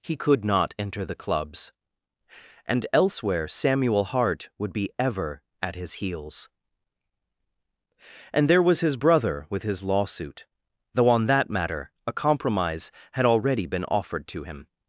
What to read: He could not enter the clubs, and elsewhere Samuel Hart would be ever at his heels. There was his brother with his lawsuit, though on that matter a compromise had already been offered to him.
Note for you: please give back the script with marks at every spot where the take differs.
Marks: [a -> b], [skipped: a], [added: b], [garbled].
He could not enter the clubs, and elsewhere Samuel Hart would be ever at his heels. [added: And] There was his brother with his lawsuit, though on that matter a compromise had already been offered to him.